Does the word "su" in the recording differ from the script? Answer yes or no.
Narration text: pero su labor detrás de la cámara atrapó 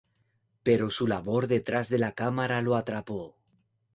no